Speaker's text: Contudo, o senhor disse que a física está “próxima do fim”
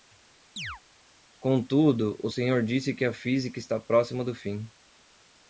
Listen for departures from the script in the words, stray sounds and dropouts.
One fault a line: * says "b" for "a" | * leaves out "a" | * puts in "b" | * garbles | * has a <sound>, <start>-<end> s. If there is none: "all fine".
* has a chirp, 0.6-0.8 s